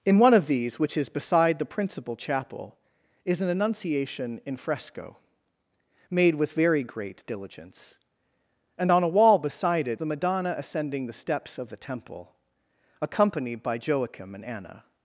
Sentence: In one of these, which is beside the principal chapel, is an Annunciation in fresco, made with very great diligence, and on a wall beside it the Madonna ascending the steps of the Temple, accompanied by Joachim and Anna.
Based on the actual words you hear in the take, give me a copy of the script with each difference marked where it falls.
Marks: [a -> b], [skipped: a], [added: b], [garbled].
In one of these, which is beside the principal chapel, is an Annunciation in fresco, made with very great diligence, and on a wall beside it the Madonna ascending the steps of the Temple, accompanied by Joachim and Anna.